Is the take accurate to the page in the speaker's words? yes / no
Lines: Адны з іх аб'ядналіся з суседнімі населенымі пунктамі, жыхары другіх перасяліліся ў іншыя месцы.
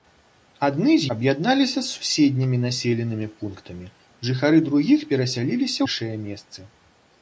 no